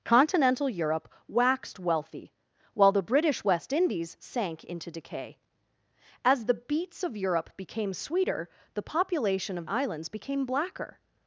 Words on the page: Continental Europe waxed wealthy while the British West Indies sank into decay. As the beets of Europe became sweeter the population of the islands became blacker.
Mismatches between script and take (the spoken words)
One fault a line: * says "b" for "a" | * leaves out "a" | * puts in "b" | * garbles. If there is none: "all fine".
* leaves out "the"